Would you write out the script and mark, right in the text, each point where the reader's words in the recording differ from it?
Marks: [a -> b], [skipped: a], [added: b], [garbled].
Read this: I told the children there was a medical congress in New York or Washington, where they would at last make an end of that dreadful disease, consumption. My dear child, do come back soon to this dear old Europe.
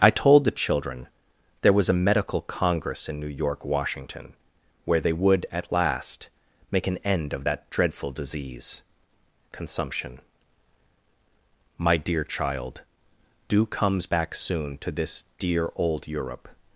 I told the children there was a medical congress in New York [skipped: or] Washington, where they would at last make an end of that dreadful disease, consumption. My dear child, do [come -> comes] back soon to this dear old Europe.